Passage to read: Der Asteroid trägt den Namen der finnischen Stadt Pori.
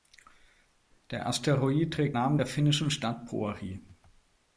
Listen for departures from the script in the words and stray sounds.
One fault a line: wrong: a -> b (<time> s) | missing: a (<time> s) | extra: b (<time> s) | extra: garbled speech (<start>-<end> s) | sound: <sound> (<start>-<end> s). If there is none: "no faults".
missing: den (2.2 s)